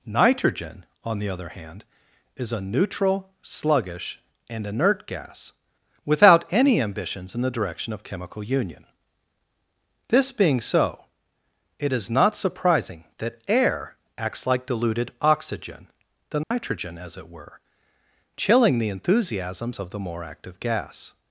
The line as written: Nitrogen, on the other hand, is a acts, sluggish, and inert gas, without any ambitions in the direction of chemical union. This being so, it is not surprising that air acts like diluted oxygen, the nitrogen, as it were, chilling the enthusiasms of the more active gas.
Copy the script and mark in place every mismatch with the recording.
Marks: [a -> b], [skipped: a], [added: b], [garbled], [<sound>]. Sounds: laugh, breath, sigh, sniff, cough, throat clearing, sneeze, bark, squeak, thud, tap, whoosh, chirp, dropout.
Nitrogen, on the other hand, is a [acts, -> neutral] sluggish, and inert gas, without any ambitions in the direction of chemical union. This being so, it is not surprising that air acts like diluted oxygen, the nitrogen, [dropout] as it were, chilling the enthusiasms of the more active gas.